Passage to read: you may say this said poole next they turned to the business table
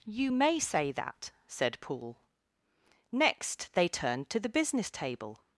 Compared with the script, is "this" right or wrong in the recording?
wrong